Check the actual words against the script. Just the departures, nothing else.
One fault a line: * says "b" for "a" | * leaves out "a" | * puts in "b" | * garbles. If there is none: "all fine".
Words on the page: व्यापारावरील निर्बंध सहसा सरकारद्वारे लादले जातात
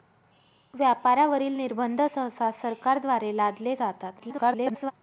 * garbles